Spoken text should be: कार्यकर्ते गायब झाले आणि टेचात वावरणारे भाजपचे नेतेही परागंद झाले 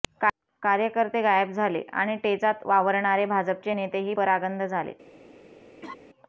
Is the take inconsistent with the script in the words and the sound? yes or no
yes